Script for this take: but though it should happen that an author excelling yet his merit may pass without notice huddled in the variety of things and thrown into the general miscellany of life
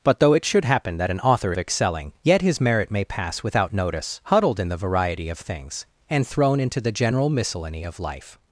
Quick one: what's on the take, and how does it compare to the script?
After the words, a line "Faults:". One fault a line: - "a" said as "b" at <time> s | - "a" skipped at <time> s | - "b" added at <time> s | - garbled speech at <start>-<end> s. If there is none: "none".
but though it should happen that an author excelling yet his merit may pass without notice huddled in the variety of things and thrown into the general miscellany of life
Faults:
none